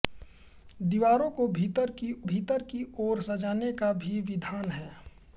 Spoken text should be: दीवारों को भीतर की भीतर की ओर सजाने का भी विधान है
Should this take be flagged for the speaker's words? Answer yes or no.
no